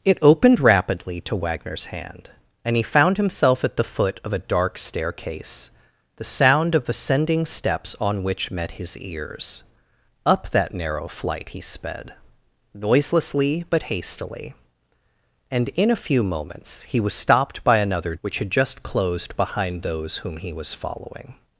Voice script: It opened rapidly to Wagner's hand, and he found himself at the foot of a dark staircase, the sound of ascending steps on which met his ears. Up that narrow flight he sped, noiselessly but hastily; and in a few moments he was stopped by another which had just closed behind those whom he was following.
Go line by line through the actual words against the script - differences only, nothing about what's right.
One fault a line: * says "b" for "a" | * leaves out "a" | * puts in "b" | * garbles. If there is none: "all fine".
all fine